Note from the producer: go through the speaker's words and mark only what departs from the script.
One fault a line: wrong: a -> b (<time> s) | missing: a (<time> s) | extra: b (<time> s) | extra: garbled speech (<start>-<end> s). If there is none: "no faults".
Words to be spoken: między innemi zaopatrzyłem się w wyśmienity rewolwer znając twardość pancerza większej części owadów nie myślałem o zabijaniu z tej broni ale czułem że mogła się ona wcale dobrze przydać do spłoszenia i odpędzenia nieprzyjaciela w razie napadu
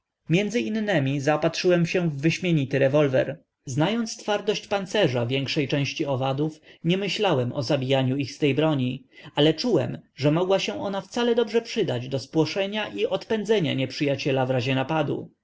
extra: ich (8.2 s)